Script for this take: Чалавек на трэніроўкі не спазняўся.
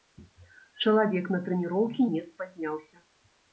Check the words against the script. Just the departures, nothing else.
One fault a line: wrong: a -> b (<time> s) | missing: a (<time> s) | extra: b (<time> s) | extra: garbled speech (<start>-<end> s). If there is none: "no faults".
no faults